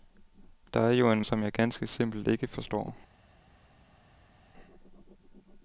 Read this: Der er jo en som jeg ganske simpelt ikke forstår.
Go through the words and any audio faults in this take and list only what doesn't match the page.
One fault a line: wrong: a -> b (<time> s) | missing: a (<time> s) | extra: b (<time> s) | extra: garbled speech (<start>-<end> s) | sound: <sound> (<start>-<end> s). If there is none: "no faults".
no faults